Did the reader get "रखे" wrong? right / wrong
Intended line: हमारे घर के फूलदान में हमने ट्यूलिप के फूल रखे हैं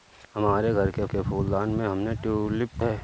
wrong